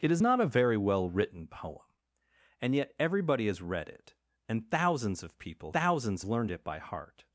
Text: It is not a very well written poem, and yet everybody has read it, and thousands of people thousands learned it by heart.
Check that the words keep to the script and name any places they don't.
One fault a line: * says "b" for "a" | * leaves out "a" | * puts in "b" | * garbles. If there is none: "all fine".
all fine